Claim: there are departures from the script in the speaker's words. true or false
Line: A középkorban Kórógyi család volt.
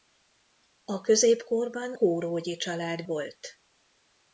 false